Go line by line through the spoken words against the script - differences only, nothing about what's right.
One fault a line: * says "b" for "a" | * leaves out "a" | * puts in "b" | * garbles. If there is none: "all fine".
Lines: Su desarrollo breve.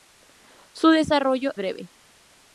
all fine